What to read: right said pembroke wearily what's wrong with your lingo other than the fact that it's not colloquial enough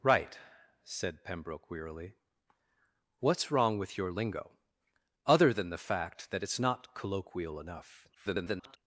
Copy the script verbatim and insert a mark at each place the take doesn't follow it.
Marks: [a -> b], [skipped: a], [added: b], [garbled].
right said pembroke wearily what's wrong with your lingo other than the fact that it's not colloquial enough [garbled]